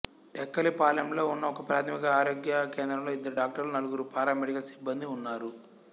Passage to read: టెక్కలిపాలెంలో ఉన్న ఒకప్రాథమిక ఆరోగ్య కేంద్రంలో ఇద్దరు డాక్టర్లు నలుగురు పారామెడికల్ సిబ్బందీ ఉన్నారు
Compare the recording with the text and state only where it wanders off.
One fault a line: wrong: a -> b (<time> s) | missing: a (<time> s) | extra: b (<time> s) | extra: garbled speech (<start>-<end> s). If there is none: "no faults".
no faults